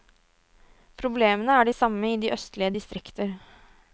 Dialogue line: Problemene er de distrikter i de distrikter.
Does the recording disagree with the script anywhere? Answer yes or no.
yes